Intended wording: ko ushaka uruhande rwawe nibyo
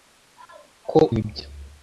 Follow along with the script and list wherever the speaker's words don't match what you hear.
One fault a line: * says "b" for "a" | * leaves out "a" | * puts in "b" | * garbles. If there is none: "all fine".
* leaves out "ushaka uruhande rwawe"